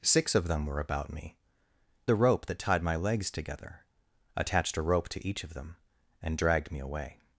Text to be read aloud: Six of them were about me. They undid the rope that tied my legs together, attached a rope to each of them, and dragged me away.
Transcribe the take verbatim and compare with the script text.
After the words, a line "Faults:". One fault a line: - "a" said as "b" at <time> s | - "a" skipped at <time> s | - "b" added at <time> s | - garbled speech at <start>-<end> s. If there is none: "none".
Six of them were about me. The rope that tied my legs together, attached a rope to each of them, and dragged me away.
Faults:
- "They undid" skipped at 1.4 s